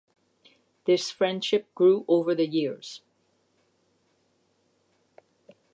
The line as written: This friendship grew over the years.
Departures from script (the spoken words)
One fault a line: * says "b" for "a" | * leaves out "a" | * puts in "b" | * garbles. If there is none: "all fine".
all fine